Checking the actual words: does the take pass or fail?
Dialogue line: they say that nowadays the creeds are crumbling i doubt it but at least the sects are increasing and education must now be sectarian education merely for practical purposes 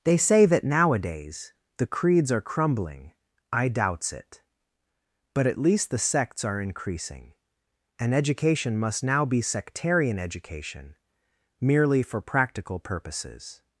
fail